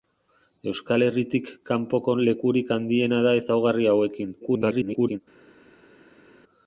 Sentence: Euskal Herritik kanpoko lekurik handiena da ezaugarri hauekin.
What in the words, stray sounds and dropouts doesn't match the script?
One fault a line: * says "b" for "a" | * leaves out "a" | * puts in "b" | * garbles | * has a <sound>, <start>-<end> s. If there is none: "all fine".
* garbles